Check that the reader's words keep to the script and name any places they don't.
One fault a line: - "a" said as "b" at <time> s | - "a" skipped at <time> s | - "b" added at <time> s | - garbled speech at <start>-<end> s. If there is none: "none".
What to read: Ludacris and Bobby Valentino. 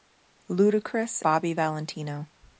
- "and" skipped at 1.2 s